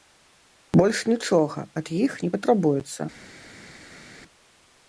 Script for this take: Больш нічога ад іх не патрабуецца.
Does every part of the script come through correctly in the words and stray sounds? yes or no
yes